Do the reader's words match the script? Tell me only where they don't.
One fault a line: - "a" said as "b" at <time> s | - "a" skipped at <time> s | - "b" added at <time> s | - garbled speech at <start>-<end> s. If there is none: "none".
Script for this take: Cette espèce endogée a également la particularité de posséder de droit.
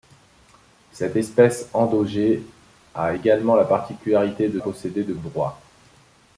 none